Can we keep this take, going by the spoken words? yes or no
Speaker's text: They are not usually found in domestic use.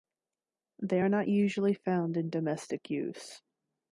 yes